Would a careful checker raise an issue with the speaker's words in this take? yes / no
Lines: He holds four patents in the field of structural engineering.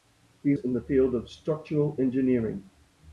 yes